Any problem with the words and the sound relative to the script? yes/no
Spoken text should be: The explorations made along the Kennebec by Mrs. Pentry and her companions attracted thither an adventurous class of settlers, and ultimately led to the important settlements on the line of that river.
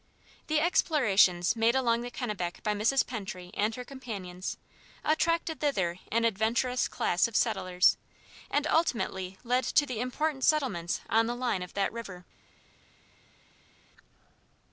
no